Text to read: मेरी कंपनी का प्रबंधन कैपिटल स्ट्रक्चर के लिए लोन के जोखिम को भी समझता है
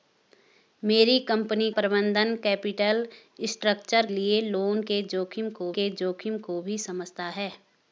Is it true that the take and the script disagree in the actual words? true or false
true